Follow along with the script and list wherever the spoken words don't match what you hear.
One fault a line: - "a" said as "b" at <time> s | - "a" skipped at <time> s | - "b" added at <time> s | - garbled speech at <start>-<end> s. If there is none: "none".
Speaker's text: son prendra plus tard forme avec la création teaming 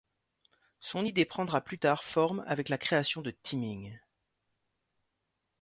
- "idée" added at 1.0 s
- "de" added at 3.2 s